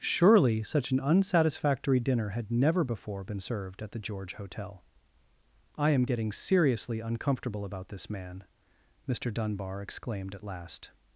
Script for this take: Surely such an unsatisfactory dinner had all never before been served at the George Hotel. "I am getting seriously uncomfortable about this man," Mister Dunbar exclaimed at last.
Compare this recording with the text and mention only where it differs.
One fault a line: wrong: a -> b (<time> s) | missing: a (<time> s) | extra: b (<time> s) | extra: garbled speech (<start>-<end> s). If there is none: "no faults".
missing: all (2.5 s)